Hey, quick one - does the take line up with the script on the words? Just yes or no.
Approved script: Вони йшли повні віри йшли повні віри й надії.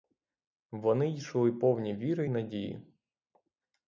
no